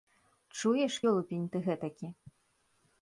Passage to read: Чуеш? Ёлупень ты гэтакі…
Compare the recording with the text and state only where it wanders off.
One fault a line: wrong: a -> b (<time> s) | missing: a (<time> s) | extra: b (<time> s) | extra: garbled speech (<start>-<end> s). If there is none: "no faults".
no faults